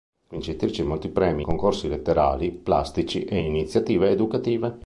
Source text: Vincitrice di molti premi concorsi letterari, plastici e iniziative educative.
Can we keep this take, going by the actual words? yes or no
yes